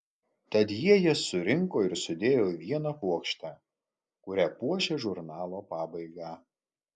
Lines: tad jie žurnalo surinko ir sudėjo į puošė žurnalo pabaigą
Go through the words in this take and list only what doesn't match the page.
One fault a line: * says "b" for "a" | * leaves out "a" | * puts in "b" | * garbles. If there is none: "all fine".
* says "jas" for "žurnalo"
* puts in "vieną puokštę kuria"